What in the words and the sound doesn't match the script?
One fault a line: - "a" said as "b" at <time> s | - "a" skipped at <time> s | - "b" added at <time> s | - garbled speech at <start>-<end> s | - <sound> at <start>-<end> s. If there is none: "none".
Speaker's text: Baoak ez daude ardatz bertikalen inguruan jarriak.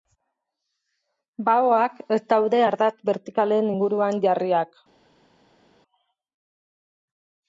none